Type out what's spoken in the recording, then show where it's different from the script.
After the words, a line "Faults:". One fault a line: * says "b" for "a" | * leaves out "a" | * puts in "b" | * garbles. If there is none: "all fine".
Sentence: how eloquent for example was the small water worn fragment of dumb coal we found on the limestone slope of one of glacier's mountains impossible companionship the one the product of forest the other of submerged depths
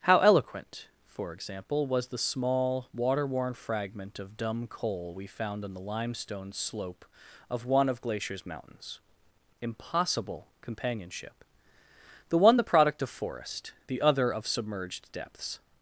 how eloquent for example was the small water worn fragment of dumb coal we found on the limestone slope of one of glacier's mountains impossible companionship the one the product of forest the other of submerged depths
Faults:
all fine